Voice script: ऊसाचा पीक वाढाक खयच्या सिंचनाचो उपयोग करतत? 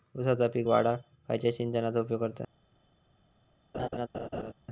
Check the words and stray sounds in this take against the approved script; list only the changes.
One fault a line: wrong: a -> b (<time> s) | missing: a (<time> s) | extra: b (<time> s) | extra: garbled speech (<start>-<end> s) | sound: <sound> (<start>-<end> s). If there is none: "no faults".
sound: laugh (3.7-4.5 s)